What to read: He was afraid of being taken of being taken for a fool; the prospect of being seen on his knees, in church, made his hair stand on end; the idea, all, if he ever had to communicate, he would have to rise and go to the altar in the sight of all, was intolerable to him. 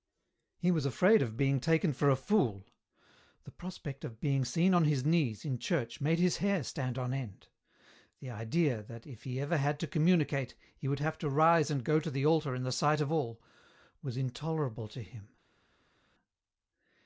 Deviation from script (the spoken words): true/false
true